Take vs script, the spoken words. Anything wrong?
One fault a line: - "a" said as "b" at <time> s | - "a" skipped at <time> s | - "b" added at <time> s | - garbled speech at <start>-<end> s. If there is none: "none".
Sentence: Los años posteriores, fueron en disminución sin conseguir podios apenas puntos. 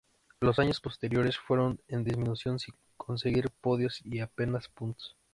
- "y" added at 4.0 s